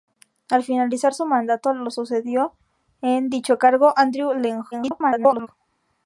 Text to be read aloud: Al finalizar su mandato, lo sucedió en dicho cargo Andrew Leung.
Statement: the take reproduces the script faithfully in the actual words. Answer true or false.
false